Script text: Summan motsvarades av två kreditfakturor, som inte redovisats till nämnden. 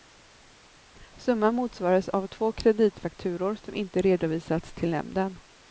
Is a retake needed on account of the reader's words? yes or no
no